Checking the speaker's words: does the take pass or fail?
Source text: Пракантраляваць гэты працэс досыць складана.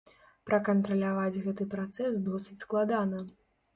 pass